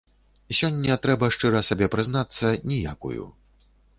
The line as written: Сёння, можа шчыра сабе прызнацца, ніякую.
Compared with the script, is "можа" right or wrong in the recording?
wrong